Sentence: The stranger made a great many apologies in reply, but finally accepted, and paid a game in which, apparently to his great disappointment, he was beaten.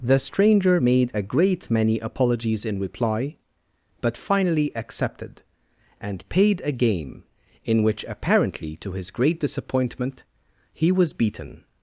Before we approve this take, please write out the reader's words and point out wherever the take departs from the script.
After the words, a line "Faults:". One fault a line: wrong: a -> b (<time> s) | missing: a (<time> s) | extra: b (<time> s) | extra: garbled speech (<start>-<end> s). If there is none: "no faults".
The stranger made a great many apologies in reply, but finally accepted, and paid a game in which, apparently to his great disappointment, he was beaten.
Faults:
no faults